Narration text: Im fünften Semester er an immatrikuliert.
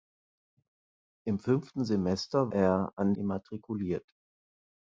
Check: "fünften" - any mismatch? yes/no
no